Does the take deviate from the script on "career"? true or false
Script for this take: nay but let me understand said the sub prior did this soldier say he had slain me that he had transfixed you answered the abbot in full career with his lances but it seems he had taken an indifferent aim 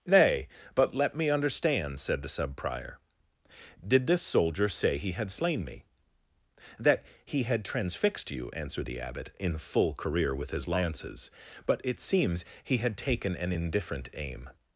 false